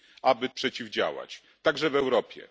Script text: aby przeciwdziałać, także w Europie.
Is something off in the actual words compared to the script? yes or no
no